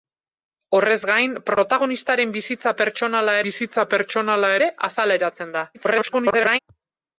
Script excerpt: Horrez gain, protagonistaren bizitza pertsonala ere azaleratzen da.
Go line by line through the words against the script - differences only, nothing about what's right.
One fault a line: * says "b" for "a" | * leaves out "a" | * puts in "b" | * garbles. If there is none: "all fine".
* puts in "bizitza pertsonala"
* garbles